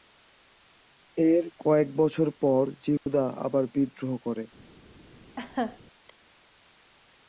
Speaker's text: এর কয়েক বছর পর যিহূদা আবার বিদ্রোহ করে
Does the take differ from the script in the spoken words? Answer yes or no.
no